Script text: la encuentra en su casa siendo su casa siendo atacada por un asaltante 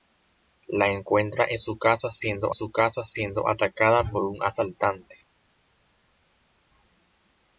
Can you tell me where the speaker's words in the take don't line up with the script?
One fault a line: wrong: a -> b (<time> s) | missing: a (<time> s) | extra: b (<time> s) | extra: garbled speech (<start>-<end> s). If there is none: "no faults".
no faults